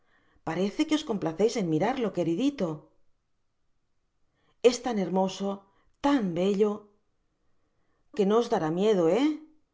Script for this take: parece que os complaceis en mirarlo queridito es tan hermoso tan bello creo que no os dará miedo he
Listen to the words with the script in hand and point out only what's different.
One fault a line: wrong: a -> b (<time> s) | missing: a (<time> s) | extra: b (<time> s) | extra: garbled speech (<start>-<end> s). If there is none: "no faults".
missing: creo (6.7 s)